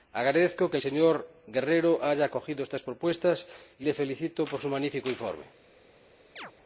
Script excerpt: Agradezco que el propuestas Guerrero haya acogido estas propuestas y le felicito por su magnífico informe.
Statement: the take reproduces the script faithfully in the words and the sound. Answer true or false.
false